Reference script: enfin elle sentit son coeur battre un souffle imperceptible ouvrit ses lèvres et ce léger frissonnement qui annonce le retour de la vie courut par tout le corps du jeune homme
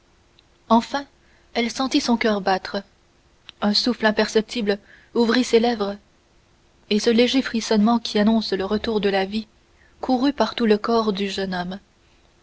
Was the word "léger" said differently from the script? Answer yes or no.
no